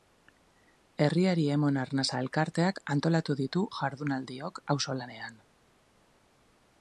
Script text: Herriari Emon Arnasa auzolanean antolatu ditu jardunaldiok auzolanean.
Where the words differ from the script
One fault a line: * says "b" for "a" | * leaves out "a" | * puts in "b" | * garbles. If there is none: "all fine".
* says "elkarteak" for "auzolanean"